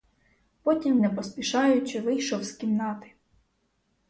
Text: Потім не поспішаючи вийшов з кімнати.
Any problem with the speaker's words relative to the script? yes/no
no